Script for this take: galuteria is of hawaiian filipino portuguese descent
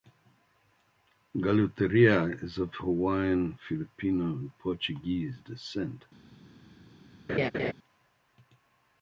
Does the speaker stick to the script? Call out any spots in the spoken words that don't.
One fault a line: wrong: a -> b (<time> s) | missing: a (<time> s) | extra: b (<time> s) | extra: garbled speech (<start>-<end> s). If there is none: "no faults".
extra: and (4.2 s)